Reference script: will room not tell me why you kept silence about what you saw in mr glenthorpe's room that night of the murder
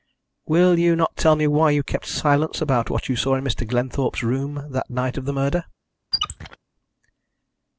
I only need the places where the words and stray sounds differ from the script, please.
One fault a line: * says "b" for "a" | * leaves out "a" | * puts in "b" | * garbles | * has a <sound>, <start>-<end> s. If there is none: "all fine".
* says "you" for "room"
* has a squeak, 6.1-6.6 s